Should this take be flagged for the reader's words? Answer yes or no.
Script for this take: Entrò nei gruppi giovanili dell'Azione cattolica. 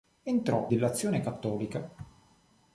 yes